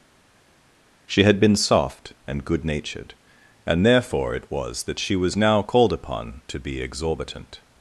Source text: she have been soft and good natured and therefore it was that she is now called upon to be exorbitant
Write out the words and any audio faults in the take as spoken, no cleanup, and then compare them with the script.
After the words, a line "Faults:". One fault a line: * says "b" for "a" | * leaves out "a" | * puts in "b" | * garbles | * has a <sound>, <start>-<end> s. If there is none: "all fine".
she had been soft and good natured and therefore it was that she was now called upon to be exorbitant
Faults:
* says "had" for "have"
* says "was" for "is"